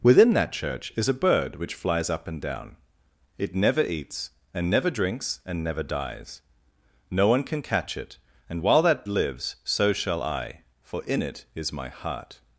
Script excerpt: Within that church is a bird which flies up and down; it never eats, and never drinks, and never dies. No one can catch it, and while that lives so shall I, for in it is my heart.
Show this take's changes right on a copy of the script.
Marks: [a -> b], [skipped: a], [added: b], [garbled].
Within that church is a bird which flies up and down; it never eats, and never drinks, and never dies. No one can catch it, and while that lives so shall I, for in it is my heart.